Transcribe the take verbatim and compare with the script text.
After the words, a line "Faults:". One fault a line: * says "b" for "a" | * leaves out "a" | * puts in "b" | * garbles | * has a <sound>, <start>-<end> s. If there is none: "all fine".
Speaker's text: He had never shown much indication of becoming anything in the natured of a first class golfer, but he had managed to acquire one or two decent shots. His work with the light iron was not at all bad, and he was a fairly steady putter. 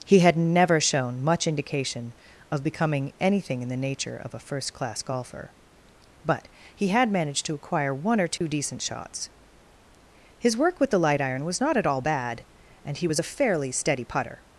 He had never shown much indication of becoming anything in the nature of a first class golfer, but he had managed to acquire one or two decent shots. His work with the light iron was not at all bad, and he was a fairly steady putter.
Faults:
* says "nature" for "natured"
* has a dropout, 8.4-8.4 s